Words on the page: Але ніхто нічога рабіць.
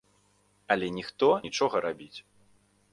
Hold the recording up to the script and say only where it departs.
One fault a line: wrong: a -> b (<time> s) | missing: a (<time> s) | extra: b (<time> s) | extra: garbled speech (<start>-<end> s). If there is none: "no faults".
no faults